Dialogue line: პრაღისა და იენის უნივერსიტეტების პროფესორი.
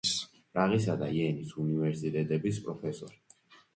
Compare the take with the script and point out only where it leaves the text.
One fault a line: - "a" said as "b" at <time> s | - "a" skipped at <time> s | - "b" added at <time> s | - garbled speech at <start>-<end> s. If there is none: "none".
none